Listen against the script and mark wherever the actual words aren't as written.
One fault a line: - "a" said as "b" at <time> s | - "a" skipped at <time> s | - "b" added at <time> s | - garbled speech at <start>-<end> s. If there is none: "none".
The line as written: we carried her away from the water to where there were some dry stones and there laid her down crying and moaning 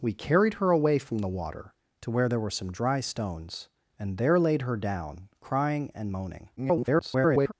- garbled speech at 6.6-7.5 s